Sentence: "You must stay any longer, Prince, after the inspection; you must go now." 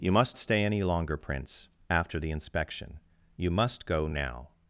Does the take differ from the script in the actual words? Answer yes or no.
no